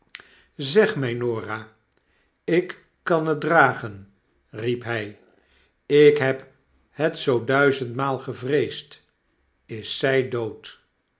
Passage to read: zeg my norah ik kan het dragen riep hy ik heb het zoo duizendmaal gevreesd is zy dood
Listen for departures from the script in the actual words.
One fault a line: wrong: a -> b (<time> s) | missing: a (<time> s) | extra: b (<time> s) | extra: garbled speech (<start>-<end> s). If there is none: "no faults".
no faults